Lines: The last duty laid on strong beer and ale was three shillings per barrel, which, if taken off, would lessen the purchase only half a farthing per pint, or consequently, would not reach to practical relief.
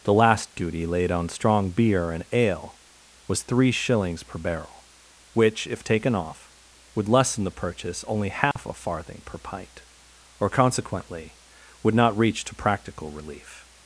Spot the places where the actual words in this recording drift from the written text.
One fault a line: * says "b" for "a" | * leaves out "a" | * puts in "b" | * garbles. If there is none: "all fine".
all fine